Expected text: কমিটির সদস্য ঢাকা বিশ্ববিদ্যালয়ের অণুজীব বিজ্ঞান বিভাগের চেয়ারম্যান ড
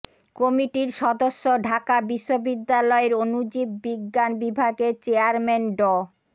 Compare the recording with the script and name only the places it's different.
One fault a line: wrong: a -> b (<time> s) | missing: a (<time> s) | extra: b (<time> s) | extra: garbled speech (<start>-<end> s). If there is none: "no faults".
no faults